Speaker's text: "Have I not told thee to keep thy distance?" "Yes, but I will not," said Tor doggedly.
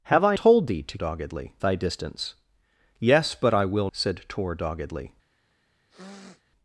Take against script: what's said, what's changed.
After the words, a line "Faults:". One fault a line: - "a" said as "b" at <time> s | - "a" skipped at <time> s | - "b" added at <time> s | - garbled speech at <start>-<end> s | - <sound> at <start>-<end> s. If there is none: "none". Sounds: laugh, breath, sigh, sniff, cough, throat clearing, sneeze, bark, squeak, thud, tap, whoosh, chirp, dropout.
"Have I told thee to doggedly thy distance?" "Yes, but I will," said Tor doggedly.
Faults:
- "not" skipped at 0.3 s
- "keep" said as "doggedly" at 0.9 s
- "not" skipped at 3.9 s
- sniff at 5.9-6.4 s